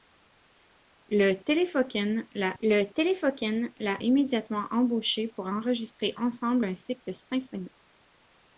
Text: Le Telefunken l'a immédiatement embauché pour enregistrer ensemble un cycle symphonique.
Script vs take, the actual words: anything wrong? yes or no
yes